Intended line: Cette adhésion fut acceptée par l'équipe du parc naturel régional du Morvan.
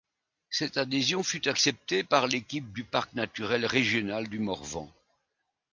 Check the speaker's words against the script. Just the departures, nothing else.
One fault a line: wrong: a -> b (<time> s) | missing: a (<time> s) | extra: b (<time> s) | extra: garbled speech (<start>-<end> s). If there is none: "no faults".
no faults